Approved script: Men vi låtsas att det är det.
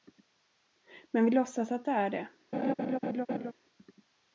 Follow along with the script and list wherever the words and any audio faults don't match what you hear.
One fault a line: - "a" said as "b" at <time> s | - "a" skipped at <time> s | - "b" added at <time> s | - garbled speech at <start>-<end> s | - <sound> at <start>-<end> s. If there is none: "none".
- laugh at 2.5-3.5 s